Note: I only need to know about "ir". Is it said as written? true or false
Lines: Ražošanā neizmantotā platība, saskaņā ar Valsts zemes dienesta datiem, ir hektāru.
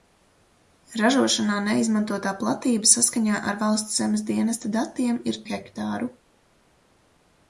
true